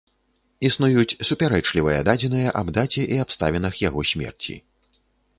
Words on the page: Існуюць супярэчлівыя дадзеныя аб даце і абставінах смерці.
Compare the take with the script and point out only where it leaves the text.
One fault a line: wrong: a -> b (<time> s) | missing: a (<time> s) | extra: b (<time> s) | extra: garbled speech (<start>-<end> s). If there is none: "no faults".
extra: яго (3.8 s)